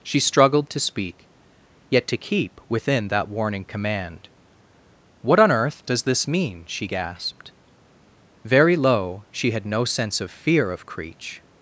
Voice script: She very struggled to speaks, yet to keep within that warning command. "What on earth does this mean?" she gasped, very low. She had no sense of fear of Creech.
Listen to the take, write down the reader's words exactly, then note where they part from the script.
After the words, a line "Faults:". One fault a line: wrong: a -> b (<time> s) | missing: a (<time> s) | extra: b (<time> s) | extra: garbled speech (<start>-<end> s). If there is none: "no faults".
She struggled to speak, yet to keep within that warning command. "What on earth does this mean?" she gasped, very low. She had no sense of fear of Creech.
Faults:
missing: very (0.2 s)
wrong: speaks -> speak (0.8 s)